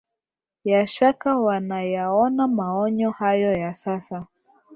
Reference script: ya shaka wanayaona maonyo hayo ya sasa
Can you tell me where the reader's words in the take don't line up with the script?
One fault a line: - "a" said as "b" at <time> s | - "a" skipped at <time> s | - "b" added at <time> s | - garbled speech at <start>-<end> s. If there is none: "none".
none